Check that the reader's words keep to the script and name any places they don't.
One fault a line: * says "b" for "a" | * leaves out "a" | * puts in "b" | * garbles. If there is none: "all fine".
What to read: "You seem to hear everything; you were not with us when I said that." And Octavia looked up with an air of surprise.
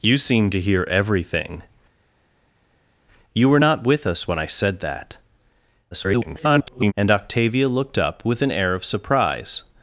* garbles